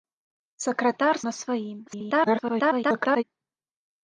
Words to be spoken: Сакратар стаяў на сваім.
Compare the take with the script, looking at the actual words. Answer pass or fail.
fail